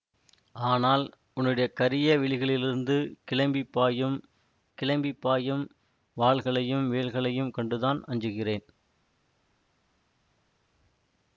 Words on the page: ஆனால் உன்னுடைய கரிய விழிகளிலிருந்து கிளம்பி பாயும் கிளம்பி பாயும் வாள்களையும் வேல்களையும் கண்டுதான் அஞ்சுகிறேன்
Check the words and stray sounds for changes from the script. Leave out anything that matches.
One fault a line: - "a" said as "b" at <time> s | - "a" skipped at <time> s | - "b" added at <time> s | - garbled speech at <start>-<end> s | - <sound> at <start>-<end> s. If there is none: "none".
none